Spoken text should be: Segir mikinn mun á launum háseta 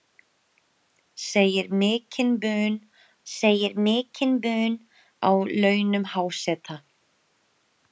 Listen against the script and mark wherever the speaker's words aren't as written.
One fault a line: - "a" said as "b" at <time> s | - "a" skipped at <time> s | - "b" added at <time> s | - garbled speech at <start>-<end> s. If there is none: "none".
- "segir mikinn mun" added at 3.3 s